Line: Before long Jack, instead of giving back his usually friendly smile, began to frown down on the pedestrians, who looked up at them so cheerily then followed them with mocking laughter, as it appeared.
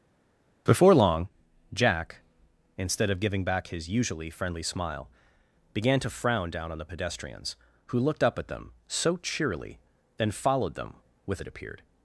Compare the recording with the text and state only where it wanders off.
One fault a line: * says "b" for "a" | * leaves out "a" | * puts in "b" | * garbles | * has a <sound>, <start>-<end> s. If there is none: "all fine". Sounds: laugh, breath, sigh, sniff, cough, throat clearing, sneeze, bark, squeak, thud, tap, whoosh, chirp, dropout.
* leaves out "mocking laughter as"